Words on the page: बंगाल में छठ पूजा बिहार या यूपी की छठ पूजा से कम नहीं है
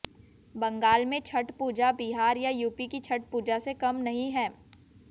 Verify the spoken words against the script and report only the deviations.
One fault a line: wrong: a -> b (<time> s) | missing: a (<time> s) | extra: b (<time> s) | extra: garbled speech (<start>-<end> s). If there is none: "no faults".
no faults